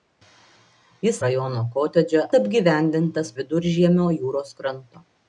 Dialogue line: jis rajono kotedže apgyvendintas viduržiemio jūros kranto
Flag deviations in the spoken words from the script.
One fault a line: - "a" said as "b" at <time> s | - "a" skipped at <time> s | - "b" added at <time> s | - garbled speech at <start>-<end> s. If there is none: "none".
none